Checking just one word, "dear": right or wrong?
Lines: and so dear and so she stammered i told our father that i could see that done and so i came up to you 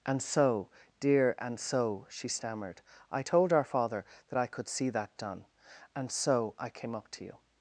right